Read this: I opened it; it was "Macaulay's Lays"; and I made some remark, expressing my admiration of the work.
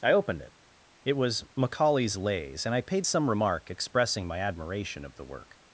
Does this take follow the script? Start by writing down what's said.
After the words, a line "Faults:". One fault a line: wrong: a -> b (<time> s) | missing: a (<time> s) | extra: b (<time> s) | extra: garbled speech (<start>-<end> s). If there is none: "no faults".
I opened it; it was "Macaulay's Lays"; and I paid some remark, expressing my admiration of the work.
Faults:
wrong: made -> paid (2.8 s)